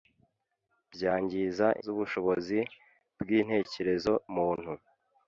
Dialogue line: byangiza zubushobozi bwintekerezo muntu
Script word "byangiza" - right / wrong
right